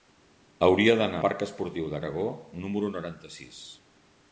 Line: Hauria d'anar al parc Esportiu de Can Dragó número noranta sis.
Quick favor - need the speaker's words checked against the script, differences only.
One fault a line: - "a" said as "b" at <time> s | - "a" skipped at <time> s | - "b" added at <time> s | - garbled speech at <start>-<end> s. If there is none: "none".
- "al" skipped at 1.2 s
- "Can" skipped at 2.0 s